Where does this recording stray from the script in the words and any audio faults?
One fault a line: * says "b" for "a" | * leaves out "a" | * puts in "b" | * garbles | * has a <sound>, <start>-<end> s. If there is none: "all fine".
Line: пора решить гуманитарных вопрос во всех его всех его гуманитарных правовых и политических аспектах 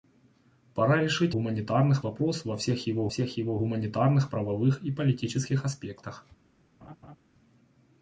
* has a laugh, 6.8-7.2 s